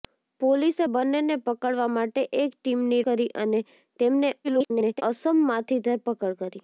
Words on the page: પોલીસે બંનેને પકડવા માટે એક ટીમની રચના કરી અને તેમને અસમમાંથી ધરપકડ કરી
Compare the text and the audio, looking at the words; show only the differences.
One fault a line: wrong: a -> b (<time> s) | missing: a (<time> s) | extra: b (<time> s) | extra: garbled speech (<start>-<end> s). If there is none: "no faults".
missing: રચના (3.0 s)
extra: garbled speech (4.4-5.0 s)